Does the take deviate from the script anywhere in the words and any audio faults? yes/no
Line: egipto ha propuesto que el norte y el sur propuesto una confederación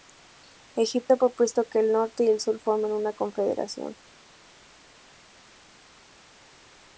yes